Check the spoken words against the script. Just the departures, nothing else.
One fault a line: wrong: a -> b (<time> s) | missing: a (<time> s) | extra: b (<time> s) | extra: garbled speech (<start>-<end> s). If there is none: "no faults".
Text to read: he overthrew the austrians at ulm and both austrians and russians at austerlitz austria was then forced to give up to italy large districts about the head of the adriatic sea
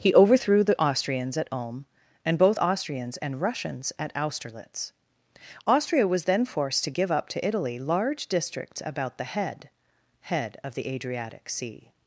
extra: head (10.2 s)